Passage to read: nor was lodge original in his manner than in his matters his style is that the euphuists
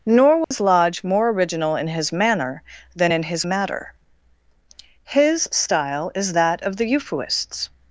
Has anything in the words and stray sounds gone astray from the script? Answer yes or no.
yes